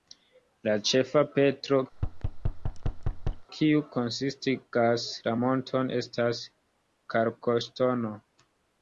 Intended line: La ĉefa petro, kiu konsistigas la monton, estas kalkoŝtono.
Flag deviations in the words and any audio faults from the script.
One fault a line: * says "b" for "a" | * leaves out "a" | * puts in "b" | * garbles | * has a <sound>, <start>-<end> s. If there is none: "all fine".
* has a thud, 1.9-3.5 s